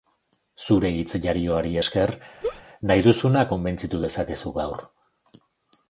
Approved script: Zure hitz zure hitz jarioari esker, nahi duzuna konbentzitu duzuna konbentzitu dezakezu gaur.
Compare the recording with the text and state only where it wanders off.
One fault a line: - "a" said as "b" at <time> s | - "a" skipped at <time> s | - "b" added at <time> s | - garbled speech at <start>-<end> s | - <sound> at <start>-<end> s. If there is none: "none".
- "zure hitz" skipped at 1.2 s
- laugh at 2.4-2.6 s
- "duzuna konbentzitu" skipped at 4.0 s